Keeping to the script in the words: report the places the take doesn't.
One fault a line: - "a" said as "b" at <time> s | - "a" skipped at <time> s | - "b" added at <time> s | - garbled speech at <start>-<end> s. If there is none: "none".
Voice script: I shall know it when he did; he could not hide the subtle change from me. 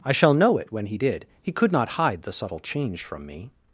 none